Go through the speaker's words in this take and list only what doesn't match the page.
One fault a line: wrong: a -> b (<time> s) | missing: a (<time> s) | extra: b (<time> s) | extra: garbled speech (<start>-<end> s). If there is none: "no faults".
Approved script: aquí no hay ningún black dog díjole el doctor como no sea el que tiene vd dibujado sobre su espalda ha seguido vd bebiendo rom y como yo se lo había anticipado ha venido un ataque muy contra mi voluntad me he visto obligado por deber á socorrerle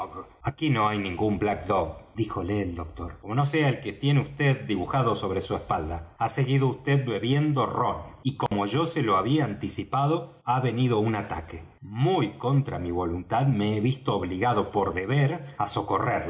no faults